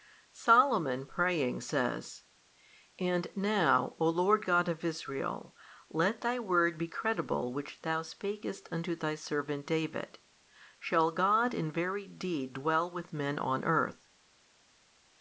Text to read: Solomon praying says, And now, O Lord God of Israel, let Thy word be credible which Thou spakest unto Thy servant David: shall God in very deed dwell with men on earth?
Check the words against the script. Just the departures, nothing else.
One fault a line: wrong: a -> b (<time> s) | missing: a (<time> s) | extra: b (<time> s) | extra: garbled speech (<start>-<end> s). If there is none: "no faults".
no faults